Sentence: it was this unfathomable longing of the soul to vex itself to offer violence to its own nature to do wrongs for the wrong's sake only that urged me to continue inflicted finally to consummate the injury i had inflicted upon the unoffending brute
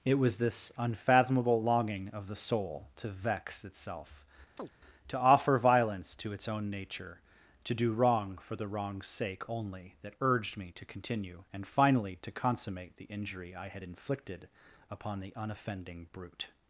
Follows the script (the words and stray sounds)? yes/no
no